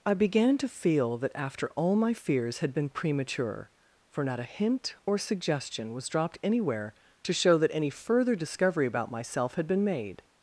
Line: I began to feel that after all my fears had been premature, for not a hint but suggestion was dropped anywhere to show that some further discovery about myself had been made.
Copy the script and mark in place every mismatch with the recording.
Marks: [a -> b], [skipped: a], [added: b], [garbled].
I began to feel that after all my fears had been premature, for not a hint [but -> or] suggestion was dropped anywhere to show that [some -> any] further discovery about myself had been made.